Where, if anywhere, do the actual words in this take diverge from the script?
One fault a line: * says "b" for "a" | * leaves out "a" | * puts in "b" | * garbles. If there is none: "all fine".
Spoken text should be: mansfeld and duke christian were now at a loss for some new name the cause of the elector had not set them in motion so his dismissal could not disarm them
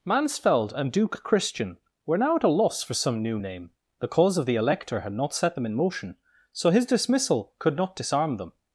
all fine